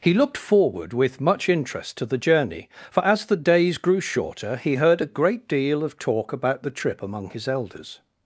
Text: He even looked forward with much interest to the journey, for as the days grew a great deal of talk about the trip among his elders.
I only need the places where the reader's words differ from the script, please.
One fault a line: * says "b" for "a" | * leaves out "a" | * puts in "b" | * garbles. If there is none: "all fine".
* leaves out "even"
* puts in "shorter he heard"